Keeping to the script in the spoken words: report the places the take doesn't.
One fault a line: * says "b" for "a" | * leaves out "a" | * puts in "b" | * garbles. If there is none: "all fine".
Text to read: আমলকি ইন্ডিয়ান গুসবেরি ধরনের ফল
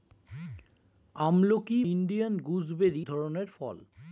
all fine